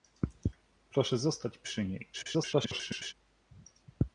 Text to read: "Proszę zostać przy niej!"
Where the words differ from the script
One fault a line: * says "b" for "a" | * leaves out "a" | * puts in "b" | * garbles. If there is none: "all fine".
* garbles